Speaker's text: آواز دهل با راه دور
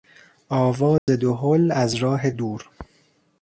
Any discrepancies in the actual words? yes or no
yes